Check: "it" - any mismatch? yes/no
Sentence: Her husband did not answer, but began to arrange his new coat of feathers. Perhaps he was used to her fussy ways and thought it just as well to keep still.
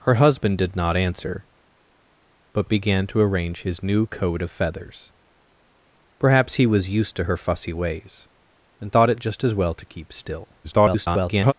no